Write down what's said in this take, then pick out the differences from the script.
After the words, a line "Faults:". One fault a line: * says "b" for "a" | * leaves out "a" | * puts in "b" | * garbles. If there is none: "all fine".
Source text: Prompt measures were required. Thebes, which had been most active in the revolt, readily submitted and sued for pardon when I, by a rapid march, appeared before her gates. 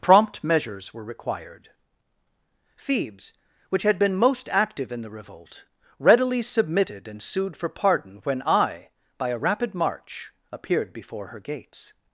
Prompt measures were required. Thebes, which had been most active in the revolt, readily submitted and sued for pardon when I, by a rapid march, appeared before her gates.
Faults:
all fine